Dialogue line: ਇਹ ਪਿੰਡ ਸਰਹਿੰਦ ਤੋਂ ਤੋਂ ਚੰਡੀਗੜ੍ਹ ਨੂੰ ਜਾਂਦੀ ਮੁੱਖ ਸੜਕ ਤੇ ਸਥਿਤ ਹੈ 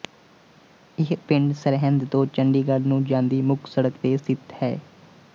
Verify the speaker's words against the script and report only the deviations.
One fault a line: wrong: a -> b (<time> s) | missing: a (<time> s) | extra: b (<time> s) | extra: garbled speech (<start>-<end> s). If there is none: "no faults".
missing: ਤੋਂ (2.2 s)